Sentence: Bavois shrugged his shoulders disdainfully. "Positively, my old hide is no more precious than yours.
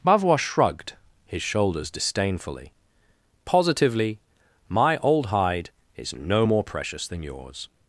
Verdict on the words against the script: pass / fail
pass